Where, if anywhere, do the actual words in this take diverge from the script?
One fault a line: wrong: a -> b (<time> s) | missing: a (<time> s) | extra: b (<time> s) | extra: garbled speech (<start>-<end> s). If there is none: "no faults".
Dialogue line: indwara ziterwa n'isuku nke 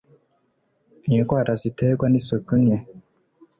no faults